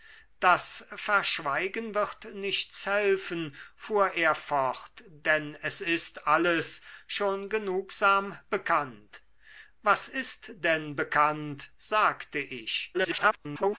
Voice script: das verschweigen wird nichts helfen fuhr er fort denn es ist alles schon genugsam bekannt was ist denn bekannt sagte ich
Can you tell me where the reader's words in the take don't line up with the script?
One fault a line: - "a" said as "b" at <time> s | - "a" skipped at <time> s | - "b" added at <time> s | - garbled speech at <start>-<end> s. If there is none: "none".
- garbled speech at 12.9-13.8 s